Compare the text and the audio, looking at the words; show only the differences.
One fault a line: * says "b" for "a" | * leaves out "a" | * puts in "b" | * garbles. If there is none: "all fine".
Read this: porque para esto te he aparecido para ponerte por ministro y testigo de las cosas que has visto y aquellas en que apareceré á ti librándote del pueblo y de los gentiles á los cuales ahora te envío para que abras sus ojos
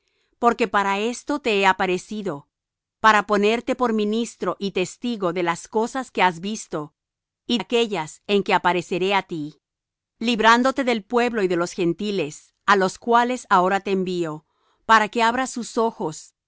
all fine